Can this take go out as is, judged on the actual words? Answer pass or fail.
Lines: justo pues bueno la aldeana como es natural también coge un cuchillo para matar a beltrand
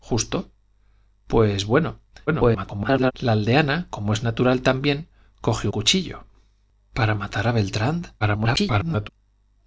fail